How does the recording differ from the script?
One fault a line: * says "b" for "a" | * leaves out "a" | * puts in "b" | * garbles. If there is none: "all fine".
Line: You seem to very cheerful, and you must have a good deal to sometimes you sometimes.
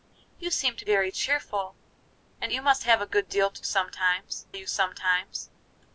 all fine